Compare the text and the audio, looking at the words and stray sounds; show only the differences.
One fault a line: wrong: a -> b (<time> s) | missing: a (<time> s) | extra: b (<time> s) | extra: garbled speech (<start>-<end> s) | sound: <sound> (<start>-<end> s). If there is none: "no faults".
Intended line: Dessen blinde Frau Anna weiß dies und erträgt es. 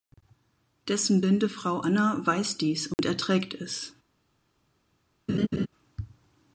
sound: dropout (2.9-3.0 s)
sound: laugh (5.3-5.7 s)